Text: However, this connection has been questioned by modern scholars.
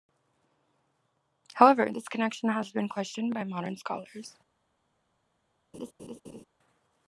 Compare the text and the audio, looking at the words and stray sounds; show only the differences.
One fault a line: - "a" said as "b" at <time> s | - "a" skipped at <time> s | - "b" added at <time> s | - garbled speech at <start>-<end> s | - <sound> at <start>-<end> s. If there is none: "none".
- laugh at 5.7-6.4 s